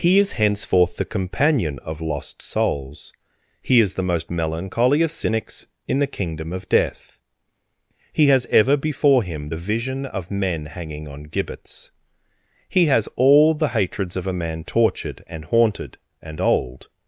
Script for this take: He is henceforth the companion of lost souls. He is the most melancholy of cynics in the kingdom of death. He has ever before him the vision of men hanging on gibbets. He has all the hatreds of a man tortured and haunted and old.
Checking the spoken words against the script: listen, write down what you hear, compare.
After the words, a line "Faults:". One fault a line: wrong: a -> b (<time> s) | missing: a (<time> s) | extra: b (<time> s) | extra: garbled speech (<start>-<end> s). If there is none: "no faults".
He is henceforth the companion of lost souls. He is the most melancholy of cynics in the kingdom of death. He has ever before him the vision of men hanging on gibbets. He has all the hatreds of a man tortured and haunted and old.
Faults:
no faults